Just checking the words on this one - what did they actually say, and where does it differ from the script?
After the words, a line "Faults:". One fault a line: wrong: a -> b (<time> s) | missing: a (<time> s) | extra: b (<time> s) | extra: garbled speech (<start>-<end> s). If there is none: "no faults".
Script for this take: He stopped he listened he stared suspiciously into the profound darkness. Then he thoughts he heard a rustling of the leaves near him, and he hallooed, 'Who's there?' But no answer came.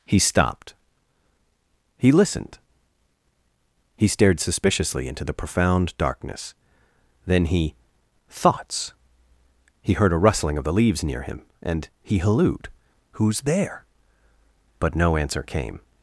He stopped he listened he stared suspiciously into the profound darkness. Then he thoughts he heard a rustling of the leaves near him, and he hallooed, 'Who's there?' But no answer came.
Faults:
no faults